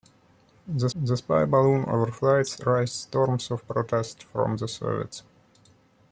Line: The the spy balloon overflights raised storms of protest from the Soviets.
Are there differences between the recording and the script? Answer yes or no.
no